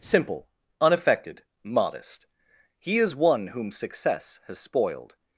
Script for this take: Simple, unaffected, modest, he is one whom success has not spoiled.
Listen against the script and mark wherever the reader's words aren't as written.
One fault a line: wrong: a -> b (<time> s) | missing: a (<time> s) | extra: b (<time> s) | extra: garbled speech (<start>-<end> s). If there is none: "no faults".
missing: not (4.6 s)